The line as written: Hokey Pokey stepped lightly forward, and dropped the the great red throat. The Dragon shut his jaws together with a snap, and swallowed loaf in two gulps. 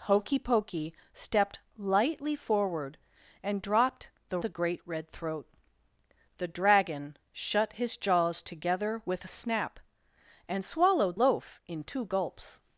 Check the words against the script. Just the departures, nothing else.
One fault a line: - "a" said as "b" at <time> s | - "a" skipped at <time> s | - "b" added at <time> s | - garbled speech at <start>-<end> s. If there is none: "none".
none